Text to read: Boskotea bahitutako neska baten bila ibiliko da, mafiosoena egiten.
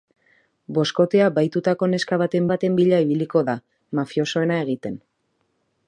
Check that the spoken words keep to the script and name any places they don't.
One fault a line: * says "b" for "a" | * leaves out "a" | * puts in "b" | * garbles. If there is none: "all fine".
* puts in "baten"